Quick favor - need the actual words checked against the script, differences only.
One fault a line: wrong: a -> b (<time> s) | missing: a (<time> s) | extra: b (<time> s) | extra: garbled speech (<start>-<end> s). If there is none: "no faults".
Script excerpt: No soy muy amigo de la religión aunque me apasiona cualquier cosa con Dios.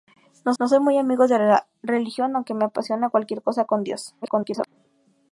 extra: no (0.6 s)
extra: garbled speech (4.2-4.7 s)